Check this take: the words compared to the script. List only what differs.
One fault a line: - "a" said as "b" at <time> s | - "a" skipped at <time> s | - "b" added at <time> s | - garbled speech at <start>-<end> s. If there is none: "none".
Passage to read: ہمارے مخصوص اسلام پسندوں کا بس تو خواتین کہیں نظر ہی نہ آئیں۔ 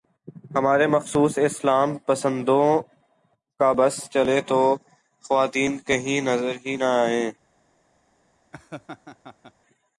- "چلے" added at 4.1 s